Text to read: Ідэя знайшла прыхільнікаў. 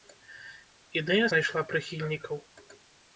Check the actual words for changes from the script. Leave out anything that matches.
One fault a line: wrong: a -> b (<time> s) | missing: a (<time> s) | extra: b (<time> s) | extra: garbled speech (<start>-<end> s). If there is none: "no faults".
no faults